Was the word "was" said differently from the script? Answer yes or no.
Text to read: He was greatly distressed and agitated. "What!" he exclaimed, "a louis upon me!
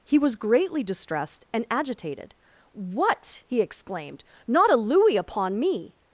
no